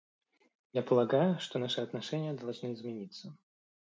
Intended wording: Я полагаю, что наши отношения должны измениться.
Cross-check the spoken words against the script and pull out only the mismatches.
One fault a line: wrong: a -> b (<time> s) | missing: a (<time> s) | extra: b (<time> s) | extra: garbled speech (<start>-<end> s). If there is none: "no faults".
no faults